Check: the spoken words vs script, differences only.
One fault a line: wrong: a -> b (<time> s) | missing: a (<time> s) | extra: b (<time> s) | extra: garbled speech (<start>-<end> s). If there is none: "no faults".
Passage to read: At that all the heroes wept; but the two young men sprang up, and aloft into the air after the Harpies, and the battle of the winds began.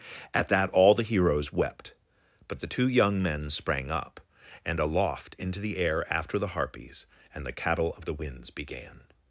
wrong: battle -> cattle (7.5 s)